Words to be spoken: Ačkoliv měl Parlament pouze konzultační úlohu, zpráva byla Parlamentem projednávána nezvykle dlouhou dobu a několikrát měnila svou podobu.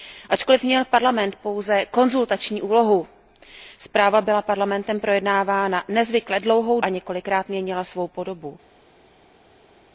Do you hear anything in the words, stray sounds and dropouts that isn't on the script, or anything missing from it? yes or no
yes